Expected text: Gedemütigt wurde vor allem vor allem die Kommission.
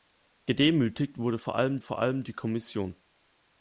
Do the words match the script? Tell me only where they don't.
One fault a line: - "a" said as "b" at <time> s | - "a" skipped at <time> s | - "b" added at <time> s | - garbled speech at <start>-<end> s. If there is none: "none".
none